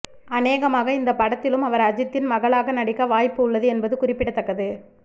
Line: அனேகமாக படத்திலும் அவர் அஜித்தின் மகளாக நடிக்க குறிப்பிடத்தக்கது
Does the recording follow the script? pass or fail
fail